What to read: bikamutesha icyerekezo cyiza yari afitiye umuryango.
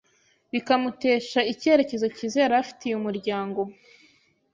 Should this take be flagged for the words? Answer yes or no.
no